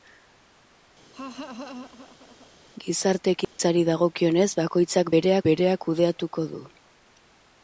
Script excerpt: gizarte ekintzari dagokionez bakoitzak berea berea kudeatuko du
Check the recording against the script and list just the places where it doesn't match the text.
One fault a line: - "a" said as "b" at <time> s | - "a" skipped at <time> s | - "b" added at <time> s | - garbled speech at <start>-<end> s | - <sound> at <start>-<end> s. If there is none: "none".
- laugh at 1.1-2.5 s
- dropout at 3.4-3.6 s